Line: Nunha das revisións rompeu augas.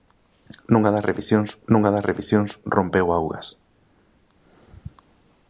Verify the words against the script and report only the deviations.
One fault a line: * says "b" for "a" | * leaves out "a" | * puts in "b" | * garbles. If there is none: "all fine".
* puts in "nunha das revisións"